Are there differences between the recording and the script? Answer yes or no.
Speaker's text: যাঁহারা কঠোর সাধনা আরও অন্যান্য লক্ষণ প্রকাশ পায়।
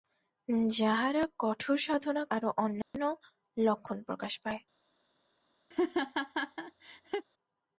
no